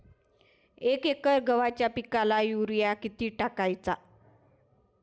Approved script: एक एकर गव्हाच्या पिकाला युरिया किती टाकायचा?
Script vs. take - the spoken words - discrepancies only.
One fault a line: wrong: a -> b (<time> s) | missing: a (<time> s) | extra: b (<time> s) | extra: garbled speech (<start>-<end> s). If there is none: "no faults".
no faults